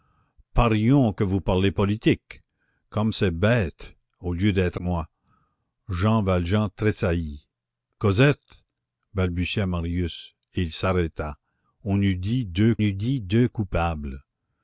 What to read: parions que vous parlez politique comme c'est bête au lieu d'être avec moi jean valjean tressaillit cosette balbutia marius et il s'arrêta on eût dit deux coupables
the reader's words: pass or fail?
fail